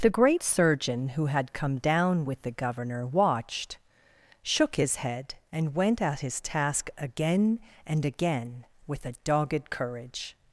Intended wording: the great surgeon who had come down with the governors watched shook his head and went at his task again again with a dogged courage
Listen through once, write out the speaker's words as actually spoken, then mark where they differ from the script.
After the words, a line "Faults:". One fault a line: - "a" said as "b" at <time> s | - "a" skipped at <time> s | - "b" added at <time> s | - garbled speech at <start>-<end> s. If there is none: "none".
the great surgeon who had come down with the governor watched shook his head and went at his task again and again with a dogged courage
Faults:
- "governors" said as "governor" at 2.5 s
- "and" added at 7.8 s